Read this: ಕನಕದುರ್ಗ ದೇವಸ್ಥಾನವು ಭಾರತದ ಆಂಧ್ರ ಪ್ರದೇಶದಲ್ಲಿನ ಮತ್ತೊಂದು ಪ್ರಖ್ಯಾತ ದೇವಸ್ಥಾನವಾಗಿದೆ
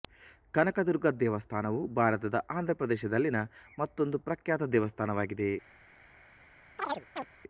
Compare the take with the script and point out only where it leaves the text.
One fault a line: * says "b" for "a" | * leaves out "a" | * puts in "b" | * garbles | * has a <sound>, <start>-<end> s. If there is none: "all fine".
* has a chirp, 6.8-7.3 s